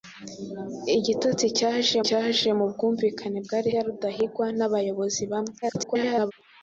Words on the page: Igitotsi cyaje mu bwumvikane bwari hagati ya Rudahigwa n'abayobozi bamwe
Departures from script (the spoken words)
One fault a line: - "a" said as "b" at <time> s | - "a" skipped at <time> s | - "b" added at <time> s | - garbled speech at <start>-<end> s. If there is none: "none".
- "cyaje" added at 2.1 s
- "hagati" skipped at 3.7 s
- garbled speech at 5.6-6.3 s